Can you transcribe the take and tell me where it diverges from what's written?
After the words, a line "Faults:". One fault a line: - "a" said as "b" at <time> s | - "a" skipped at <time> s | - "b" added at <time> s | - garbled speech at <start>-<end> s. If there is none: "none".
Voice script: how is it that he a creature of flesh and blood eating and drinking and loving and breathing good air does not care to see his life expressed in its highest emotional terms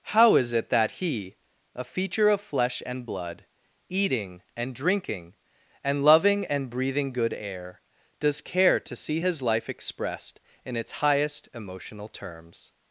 how is it that he a feature of flesh and blood eating and drinking and loving and breathing good air does care to see his life expressed in its highest emotional terms
Faults:
- "creature" said as "feature" at 1.8 s
- "not" skipped at 8.4 s